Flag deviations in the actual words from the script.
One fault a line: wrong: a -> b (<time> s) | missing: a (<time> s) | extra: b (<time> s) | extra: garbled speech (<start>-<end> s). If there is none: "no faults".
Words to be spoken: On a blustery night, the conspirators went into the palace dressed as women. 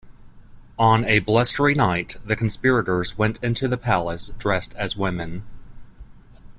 no faults